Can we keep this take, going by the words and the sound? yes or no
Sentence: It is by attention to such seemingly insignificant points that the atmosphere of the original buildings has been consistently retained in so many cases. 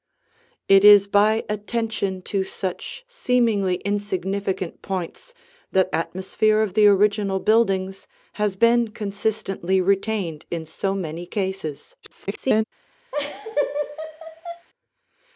no